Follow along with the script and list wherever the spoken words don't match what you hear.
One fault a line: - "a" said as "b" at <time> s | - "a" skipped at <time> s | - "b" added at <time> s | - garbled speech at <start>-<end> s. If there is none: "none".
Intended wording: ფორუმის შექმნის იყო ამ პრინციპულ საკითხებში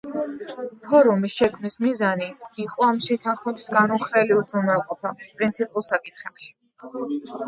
- "მიზანი" added at 1.8 s
- "შეთანხმების განუხრელი უზრუნველყოფა" added at 3.1 s